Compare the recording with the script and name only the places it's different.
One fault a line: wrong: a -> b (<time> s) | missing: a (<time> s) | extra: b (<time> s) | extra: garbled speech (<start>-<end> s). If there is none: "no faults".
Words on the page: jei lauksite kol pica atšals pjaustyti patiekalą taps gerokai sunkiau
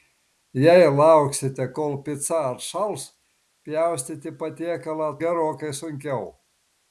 missing: taps (5.1 s)